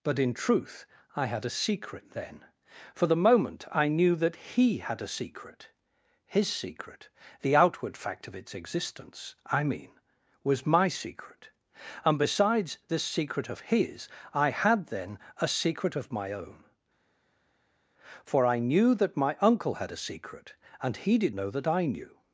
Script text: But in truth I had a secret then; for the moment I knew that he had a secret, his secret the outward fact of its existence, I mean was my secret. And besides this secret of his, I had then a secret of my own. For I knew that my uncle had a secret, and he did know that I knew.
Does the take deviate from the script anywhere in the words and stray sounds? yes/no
no